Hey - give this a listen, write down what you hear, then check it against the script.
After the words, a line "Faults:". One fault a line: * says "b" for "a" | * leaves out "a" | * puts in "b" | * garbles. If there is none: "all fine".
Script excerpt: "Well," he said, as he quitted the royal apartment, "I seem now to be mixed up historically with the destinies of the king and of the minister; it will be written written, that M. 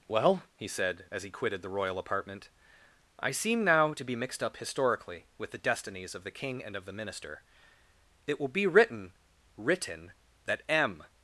"Well," he said, as he quitted the royal apartment, "I seem now to be mixed up historically with the destinies of the king and of the minister; it will be written written, that M.
Faults:
all fine